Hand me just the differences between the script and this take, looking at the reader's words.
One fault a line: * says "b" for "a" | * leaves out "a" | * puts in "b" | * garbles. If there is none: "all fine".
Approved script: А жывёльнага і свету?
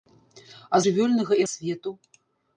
all fine